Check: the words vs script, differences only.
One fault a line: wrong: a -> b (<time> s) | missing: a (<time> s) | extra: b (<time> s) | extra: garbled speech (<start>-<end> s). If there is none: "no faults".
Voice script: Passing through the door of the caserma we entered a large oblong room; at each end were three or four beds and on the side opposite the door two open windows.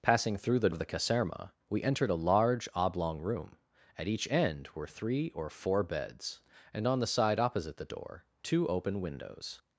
missing: door (0.7 s)